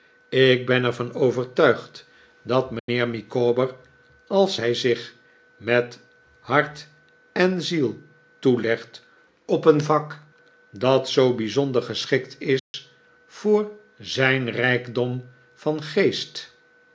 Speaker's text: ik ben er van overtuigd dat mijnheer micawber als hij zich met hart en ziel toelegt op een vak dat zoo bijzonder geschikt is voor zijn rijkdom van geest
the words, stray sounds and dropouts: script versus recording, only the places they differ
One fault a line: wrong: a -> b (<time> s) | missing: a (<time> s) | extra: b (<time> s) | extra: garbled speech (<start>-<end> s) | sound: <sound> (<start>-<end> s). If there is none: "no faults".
sound: dropout (2.8-2.9 s)
sound: dropout (12.6-12.7 s)